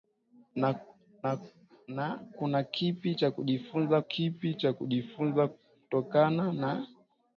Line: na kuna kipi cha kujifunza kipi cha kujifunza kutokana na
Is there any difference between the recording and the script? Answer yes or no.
no